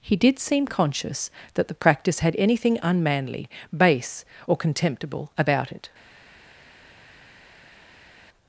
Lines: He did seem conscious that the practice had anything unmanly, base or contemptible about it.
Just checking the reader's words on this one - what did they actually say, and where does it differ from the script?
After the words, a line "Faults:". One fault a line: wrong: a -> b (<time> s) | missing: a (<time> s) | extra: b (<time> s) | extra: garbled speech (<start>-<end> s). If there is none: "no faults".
He did seem conscious that the practice had anything unmanly, base or contemptible about it.
Faults:
no faults